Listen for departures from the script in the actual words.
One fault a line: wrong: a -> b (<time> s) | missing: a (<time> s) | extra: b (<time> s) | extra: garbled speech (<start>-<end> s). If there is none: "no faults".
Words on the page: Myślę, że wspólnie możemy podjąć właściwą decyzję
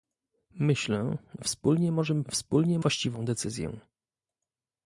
missing: że (1.2 s)
wrong: podjąć -> wspólnie (2.3 s)